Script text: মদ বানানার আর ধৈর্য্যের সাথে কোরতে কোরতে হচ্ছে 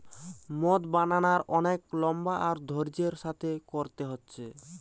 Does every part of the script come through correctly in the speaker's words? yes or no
no